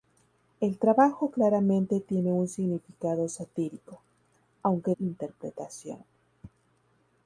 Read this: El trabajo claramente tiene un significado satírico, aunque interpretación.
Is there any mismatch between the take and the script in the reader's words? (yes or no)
no